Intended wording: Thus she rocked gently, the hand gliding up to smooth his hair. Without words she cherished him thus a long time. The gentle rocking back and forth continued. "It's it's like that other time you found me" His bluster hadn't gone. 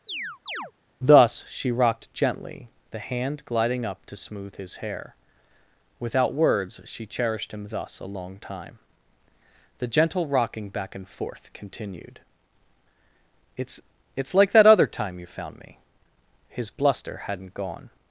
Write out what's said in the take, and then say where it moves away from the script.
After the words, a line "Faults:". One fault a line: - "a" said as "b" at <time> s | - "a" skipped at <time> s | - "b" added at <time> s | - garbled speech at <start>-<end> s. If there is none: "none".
Thus she rocked gently, the hand gliding up to smooth his hair. Without words she cherished him thus a long time. The gentle rocking back and forth continued. "It's it's like that other time you found me" His bluster hadn't gone.
Faults:
none